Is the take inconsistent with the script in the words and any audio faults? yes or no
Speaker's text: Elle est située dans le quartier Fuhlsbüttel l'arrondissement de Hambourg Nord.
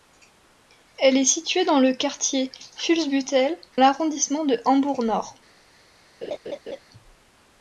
yes